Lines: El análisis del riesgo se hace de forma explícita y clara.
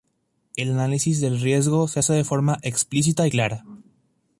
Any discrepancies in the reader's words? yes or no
no